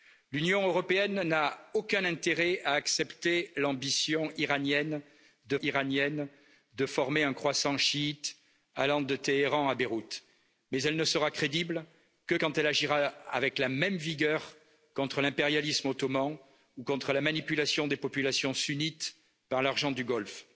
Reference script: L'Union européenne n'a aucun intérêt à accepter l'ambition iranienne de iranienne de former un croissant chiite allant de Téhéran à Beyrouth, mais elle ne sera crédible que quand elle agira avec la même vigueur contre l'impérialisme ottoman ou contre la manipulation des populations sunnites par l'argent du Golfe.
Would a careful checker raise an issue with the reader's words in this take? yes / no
no